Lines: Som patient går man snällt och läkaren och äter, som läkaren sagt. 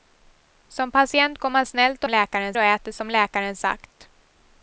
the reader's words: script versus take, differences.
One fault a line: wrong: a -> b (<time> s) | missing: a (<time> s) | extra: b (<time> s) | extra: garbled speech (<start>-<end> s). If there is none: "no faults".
no faults